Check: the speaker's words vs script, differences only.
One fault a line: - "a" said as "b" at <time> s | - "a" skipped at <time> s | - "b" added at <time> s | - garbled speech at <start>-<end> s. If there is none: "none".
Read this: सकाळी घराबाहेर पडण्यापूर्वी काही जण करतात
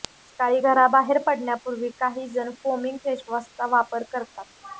- "फोमिंग फेसवॉशचा वापर" added at 2.6 s